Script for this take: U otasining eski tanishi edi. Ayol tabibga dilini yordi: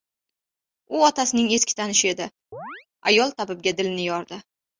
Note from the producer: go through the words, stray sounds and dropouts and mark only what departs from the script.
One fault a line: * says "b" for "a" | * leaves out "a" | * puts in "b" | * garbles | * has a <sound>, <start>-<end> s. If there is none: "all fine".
* has a chirp, 2.5-2.9 s